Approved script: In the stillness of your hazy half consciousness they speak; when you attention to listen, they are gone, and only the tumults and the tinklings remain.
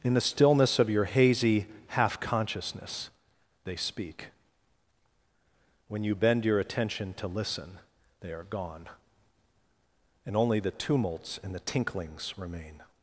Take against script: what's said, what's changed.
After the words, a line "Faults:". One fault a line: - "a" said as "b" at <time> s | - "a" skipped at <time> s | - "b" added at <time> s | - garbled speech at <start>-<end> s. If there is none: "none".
In the stillness of your hazy half consciousness they speak; when you bend your attention to listen, they are gone, and only the tumults and the tinklings remain.
Faults:
- "bend your" added at 6.2 s